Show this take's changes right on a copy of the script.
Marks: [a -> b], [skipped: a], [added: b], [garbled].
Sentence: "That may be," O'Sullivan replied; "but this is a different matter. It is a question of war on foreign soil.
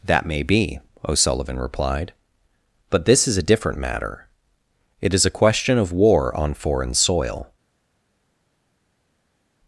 "That may be," O'Sullivan replied; "but this is a different matter. It is a question of war on foreign soil.